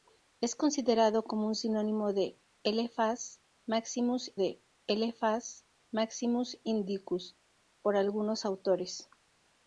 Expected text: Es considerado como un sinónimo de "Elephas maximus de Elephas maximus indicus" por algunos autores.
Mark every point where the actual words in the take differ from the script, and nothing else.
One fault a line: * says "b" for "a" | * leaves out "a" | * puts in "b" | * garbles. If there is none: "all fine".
all fine